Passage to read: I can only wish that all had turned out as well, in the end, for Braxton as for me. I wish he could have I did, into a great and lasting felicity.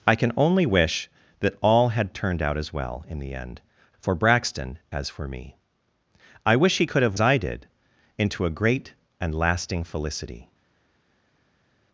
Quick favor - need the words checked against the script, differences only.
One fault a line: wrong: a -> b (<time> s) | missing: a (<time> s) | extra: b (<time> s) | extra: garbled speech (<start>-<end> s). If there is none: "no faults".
no faults